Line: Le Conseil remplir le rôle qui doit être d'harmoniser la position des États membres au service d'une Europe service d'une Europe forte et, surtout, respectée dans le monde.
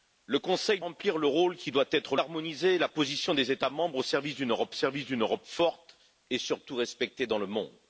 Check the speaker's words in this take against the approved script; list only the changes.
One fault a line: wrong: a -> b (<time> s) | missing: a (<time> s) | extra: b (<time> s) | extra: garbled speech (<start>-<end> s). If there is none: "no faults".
no faults